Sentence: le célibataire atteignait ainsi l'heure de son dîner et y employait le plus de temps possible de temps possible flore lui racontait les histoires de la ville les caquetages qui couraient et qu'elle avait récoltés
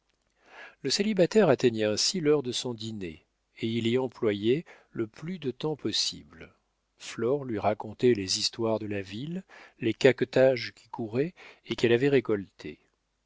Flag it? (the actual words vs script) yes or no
yes